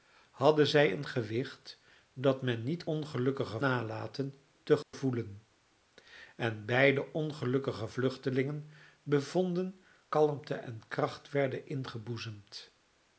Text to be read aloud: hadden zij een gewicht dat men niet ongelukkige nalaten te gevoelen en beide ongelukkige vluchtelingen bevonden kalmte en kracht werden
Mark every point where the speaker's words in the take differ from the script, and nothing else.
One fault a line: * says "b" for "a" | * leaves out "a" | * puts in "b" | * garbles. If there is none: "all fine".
all fine